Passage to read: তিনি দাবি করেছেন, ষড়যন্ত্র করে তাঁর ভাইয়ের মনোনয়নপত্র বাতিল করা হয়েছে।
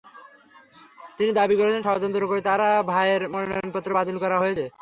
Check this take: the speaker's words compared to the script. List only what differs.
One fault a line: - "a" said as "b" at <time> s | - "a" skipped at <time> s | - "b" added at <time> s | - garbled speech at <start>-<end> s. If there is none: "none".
none